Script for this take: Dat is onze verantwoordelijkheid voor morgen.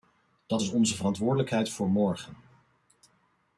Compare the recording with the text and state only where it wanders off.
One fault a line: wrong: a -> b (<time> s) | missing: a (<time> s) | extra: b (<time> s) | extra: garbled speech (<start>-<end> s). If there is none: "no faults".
no faults